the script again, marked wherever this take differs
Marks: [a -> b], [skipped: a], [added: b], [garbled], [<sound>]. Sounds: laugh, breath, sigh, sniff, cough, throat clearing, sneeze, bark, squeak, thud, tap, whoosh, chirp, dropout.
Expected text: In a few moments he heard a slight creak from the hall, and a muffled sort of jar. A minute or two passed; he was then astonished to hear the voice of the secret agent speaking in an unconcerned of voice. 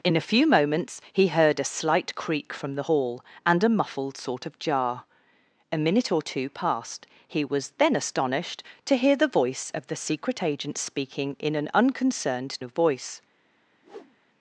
In a few moments he heard a slight creak from the hall, and a muffled sort of jar. A minute or two passed; he was then astonished to hear the voice of the secret agent speaking in an unconcerned of voice. [whoosh]